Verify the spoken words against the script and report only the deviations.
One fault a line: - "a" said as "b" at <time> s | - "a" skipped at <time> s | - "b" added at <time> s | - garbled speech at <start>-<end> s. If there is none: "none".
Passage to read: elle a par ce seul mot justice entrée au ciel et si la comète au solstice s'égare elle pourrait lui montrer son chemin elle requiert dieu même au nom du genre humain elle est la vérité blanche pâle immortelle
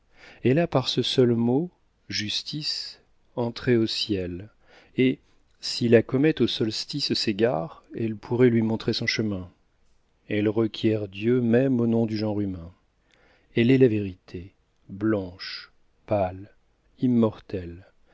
none